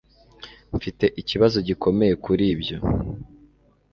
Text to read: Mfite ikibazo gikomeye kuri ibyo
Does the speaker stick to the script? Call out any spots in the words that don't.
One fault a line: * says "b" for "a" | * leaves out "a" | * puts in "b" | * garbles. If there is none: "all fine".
all fine